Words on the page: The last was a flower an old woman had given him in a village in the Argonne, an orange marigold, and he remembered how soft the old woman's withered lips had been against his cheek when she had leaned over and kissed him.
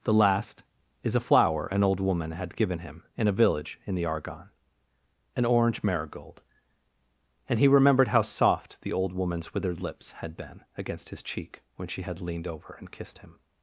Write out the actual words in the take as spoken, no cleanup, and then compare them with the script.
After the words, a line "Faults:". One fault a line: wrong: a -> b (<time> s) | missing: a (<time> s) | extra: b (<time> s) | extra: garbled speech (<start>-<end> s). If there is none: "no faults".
The last is a flower an old woman had given him in a village in the Argonne, an orange marigold, and he remembered how soft the old woman's withered lips had been against his cheek when she had leaned over and kissed him.
Faults:
wrong: was -> is (1.0 s)